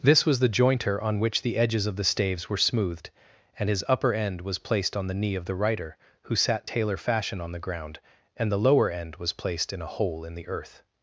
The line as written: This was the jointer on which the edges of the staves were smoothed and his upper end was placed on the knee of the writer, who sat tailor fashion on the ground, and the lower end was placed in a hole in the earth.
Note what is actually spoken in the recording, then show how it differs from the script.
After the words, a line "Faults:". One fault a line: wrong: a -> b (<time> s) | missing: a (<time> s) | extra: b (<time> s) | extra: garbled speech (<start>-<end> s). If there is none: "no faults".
This was the jointer on which the edges of the staves were smoothed and his upper end was placed on the knee of the writer, who sat tailor fashion on the ground, and the lower end was placed in a hole in the earth.
Faults:
no faults